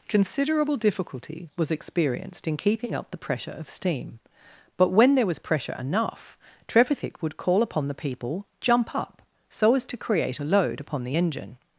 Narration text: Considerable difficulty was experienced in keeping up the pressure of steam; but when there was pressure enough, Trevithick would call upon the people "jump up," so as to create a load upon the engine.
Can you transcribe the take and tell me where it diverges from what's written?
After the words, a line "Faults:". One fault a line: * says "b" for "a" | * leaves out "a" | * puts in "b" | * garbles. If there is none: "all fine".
Considerable difficulty was experienced in keeping up the pressure of steam; but when there was pressure enough, Trevithick would call upon the people "jump up," so as to create a load upon the engine.
Faults:
all fine